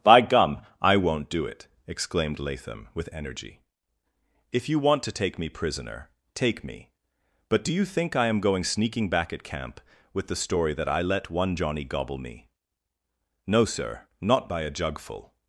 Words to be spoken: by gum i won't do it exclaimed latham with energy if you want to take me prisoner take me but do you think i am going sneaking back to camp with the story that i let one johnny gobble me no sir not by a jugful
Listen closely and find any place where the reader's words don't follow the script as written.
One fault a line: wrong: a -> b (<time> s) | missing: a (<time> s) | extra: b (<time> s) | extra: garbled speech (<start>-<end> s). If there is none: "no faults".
wrong: to -> at (9.3 s)